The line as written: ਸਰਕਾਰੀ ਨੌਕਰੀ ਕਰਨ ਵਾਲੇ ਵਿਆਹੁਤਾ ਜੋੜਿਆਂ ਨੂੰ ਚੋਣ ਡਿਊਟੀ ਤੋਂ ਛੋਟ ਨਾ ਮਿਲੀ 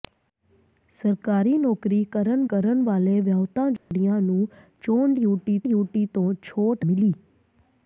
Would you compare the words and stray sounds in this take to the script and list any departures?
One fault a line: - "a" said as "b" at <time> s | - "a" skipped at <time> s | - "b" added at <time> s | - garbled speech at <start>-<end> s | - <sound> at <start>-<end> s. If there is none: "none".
- "ਕਰਨ" added at 2.5 s
- dropout at 3.8-3.9 s
- "ਡਿਊਟੀ" added at 5.6 s
- "ਨਾ" skipped at 6.9 s